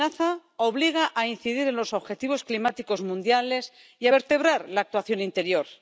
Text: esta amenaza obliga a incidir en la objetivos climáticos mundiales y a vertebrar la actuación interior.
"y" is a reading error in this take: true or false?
false